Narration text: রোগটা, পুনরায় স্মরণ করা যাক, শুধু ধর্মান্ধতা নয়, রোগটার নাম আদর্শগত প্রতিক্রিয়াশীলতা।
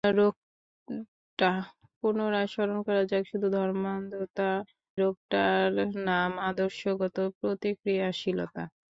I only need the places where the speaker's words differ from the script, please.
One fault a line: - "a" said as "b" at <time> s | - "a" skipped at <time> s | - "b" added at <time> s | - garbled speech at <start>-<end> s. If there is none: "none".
- "নয়" skipped at 4.5 s